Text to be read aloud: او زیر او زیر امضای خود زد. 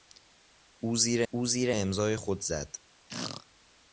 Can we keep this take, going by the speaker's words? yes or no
yes